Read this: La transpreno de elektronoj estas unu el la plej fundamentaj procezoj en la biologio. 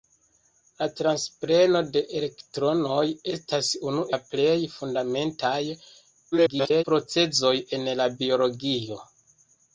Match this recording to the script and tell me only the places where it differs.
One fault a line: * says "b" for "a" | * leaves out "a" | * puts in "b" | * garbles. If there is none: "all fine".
* leaves out "el"
* garbles